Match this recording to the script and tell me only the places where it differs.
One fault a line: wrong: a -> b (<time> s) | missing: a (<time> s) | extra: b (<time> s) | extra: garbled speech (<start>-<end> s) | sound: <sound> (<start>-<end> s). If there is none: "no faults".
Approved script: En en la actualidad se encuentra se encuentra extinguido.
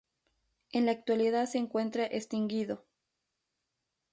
missing: en (0.9 s)
missing: se encuentra (2.1 s)